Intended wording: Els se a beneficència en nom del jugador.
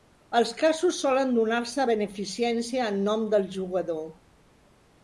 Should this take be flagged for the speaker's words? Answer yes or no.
yes